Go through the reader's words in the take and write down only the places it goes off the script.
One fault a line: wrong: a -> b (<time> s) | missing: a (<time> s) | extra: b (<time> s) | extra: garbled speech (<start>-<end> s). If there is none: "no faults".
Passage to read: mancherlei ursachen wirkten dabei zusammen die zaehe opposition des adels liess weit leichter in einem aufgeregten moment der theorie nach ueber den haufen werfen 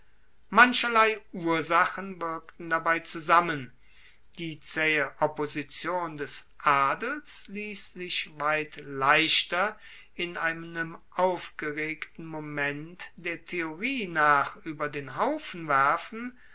extra: sich (7.9 s)